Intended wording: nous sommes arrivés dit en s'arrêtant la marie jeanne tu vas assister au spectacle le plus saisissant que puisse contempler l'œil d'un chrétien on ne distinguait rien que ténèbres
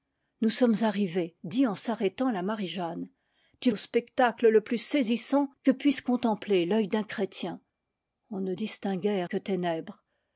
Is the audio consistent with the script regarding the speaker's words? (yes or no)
no